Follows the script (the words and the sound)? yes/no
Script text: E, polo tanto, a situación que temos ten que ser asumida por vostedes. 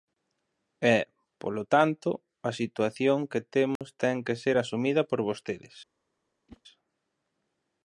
no